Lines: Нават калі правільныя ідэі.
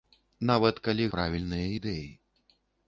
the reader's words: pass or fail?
pass